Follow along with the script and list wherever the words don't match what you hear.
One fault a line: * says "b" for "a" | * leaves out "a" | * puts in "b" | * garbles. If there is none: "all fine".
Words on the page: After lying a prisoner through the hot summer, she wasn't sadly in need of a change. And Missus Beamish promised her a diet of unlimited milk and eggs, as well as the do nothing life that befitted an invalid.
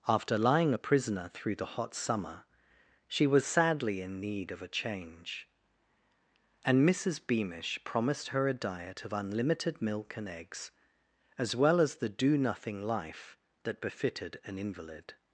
* says "was" for "wasn't"